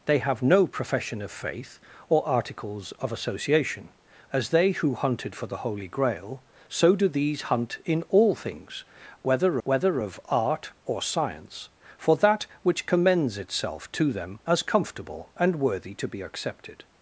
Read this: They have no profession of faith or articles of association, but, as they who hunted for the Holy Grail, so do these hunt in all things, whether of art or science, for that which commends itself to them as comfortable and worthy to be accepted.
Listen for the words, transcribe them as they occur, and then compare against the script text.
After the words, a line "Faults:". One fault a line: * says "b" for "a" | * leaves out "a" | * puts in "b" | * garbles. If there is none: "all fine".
They have no profession of faith or articles of association, as they who hunted for the Holy Grail, so do these hunt in all things, whether whether of art or science, for that which commends itself to them as comfortable and worthy to be accepted.
Faults:
* leaves out "but"
* puts in "whether"